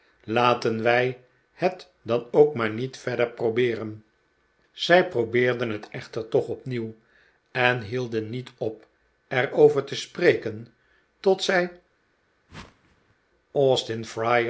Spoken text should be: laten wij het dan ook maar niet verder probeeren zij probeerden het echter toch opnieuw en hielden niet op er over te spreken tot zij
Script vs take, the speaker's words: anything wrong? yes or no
no